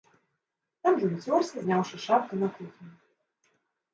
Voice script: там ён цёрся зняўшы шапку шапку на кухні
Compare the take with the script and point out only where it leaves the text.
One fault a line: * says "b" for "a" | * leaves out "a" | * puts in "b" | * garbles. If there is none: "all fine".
* leaves out "шапку"